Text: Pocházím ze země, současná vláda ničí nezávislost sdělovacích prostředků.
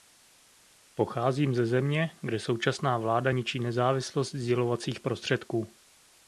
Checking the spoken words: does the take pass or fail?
fail